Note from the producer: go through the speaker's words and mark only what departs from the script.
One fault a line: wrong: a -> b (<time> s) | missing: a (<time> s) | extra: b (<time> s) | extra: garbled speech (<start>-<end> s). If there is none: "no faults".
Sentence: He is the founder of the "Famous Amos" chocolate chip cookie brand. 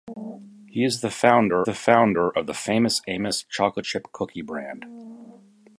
extra: the founder (1.6 s)